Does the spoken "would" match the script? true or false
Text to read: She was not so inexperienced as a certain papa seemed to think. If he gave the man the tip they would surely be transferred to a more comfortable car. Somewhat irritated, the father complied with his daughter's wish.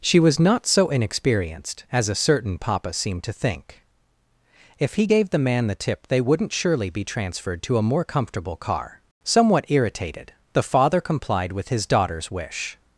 false